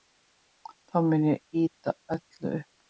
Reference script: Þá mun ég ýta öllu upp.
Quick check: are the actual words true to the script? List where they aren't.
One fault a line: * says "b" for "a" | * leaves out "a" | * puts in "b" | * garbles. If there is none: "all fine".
all fine